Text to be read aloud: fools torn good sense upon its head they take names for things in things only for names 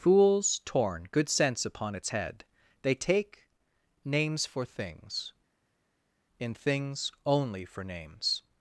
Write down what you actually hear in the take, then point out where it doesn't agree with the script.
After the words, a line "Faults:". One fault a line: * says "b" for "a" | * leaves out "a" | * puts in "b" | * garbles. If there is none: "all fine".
fools torn good sense upon its head they take names for things in things only for names
Faults:
all fine